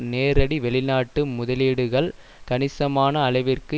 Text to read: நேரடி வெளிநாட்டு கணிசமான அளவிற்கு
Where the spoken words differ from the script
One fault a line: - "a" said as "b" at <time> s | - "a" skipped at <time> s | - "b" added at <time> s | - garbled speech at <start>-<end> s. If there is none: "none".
- "முதலீடுகள்" added at 1.3 s